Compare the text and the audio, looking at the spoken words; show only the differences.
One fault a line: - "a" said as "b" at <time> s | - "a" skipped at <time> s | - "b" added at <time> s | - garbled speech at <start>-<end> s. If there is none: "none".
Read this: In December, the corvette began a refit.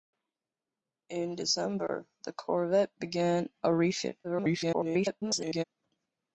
- garbled speech at 4.2-5.6 s